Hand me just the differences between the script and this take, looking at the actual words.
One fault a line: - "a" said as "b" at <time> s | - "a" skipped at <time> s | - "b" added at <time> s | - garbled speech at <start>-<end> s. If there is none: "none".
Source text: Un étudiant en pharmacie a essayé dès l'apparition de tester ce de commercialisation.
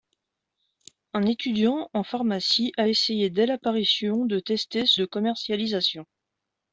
none